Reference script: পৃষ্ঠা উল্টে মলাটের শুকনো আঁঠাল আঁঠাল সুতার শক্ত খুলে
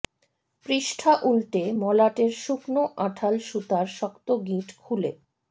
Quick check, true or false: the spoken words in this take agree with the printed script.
false